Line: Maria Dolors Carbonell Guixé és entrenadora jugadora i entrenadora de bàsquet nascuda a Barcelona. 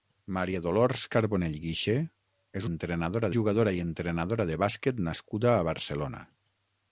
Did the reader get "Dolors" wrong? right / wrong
right